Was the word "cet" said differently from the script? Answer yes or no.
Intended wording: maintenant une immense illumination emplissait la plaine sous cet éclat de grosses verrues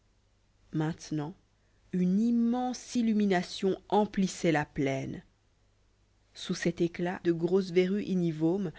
no